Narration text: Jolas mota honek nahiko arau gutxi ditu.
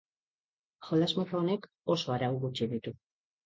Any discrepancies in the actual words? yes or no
yes